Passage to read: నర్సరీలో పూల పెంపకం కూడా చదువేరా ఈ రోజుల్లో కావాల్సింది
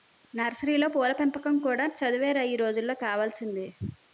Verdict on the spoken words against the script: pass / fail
pass